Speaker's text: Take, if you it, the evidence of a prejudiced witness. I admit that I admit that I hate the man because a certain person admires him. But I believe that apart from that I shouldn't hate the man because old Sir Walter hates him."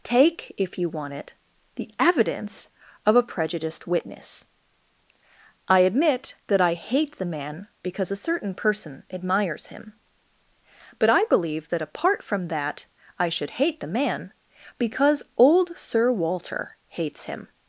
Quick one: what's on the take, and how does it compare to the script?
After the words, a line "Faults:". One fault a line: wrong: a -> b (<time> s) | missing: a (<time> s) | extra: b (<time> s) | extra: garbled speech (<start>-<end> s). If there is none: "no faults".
Take, if you want it, the evidence of a prejudiced witness. I admit that I hate the man because a certain person admires him. But I believe that apart from that I should hate the man because old Sir Walter hates him."
Faults:
extra: want (0.9 s)
missing: admit that I (6.7 s)
wrong: shouldn't -> should (13.3 s)